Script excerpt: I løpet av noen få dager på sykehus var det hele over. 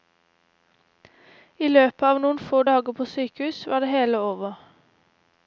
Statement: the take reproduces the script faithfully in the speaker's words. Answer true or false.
true